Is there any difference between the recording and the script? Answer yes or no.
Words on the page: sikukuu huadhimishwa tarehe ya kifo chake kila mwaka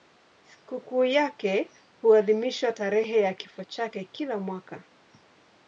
yes